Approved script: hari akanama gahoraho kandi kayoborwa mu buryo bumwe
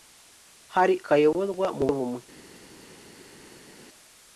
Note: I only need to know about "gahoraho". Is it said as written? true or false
false